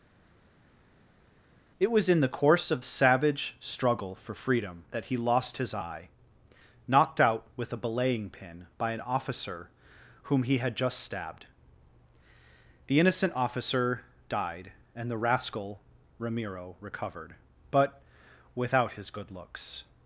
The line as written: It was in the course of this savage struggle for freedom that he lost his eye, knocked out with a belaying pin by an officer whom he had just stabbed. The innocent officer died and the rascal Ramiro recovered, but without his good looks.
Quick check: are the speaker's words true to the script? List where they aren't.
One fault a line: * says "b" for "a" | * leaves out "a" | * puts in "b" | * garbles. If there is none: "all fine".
* leaves out "this"